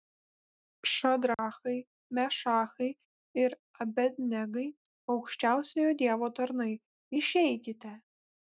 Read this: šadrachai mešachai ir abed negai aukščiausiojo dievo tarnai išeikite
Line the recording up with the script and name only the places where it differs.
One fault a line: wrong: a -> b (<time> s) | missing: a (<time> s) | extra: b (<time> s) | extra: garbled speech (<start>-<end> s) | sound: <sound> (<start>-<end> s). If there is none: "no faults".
sound: dropout (1.3-1.4 s)